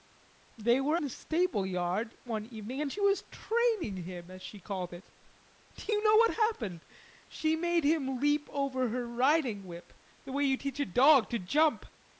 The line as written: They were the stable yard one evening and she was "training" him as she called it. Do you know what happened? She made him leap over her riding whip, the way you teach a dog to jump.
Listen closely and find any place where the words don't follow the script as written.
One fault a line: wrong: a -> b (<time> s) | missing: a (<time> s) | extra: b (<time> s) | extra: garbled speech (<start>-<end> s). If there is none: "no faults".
no faults